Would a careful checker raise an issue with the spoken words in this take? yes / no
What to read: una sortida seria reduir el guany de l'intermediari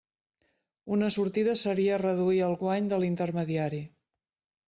no